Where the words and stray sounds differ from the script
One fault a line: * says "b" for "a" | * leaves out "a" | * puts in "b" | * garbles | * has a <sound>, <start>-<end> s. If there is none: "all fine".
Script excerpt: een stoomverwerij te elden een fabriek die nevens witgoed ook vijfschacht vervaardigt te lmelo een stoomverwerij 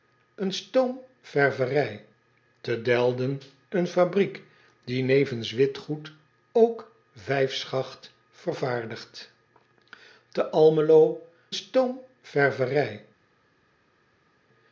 * leaves out "een"